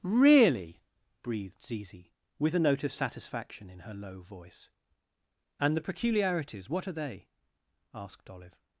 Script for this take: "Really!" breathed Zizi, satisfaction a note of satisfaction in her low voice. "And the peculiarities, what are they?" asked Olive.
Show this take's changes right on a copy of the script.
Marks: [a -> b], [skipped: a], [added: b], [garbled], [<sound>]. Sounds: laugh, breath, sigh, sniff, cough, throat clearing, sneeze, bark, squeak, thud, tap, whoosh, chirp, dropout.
"Really!" breathed Zizi, [satisfaction -> with] a note of satisfaction in her low voice. "And the peculiarities, what are they?" asked Olive.